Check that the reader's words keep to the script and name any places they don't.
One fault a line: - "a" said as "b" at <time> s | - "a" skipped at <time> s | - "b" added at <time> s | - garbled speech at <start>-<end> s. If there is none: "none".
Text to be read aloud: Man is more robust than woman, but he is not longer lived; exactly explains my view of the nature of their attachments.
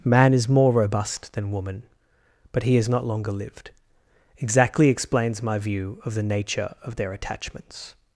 none